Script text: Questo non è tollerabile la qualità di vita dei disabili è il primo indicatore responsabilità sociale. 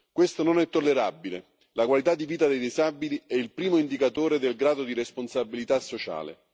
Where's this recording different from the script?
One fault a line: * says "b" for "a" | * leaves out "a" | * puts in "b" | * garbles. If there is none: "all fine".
* puts in "del grado di"